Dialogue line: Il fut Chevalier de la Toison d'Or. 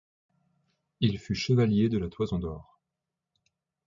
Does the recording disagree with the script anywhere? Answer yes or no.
no